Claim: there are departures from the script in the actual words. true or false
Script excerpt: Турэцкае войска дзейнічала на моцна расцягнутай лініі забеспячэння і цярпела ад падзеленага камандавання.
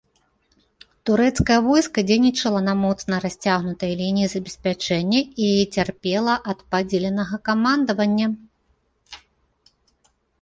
false